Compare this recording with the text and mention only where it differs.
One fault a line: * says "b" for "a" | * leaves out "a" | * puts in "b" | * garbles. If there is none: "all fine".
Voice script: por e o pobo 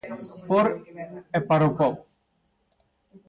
* puts in "para"